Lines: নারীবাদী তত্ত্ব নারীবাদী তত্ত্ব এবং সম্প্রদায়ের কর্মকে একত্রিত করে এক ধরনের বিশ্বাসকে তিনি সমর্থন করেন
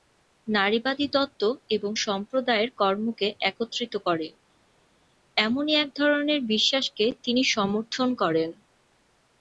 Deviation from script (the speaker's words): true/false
true